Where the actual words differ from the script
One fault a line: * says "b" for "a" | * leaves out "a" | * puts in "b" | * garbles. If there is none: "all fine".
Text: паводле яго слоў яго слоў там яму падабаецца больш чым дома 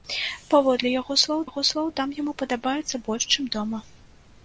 all fine